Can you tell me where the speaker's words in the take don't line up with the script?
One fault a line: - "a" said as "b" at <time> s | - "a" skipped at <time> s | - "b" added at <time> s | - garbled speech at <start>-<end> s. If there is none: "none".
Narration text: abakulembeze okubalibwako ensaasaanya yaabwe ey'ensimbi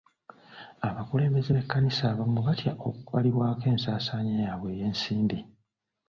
- "b'ekkanisa abamu batya" added at 1.5 s